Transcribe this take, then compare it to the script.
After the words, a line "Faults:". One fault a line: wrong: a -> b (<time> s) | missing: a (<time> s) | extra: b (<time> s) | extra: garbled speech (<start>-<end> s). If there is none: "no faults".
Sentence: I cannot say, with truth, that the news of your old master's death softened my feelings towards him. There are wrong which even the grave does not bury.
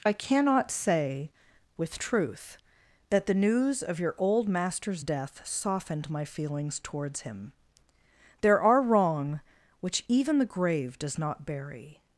I cannot say, with truth, that the news of your old master's death softened my feelings towards him. There are wrong which even the grave does not bury.
Faults:
no faults